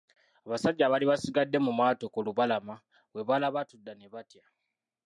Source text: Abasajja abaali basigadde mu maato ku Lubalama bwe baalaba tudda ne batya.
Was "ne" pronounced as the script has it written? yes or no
yes